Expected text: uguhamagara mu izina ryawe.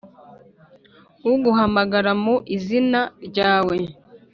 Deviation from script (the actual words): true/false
false